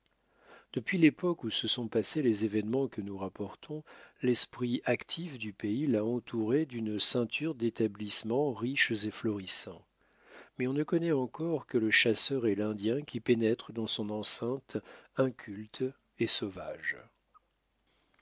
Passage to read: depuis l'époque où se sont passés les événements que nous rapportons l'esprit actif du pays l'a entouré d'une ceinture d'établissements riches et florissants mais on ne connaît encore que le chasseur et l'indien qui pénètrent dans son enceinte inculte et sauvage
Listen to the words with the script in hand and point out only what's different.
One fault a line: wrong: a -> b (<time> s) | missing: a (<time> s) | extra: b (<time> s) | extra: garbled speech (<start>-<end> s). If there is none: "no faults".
no faults